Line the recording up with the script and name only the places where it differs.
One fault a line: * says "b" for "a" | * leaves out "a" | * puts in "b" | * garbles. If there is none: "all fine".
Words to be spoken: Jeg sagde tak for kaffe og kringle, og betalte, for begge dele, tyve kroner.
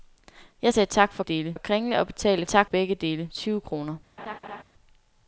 * says "dele" for "kaffe"
* says "tak" for "for"